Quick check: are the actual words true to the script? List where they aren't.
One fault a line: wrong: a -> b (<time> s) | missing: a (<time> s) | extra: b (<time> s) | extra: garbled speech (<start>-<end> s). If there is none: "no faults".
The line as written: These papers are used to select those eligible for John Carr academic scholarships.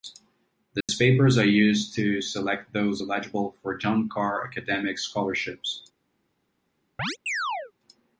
no faults